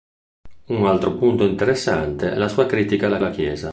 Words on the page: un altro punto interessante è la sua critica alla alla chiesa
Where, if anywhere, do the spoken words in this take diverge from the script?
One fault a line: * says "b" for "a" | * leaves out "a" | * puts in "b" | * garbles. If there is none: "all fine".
all fine